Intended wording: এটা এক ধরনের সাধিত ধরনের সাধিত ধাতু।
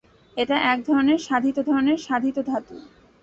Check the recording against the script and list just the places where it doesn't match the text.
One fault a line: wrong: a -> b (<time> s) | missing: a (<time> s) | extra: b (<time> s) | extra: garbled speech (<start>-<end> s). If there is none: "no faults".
no faults